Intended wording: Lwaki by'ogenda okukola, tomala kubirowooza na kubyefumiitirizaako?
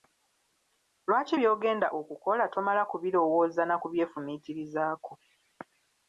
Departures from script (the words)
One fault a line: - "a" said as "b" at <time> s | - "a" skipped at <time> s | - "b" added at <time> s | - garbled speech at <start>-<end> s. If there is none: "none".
none